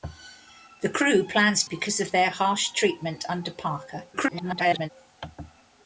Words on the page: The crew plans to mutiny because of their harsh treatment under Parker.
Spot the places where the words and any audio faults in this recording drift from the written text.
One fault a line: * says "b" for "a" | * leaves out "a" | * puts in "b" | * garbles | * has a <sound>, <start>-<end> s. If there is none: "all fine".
* leaves out "to mutiny"
* garbles